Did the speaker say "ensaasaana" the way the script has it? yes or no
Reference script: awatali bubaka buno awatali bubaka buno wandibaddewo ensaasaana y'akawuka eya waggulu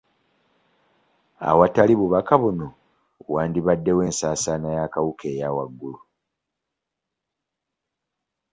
yes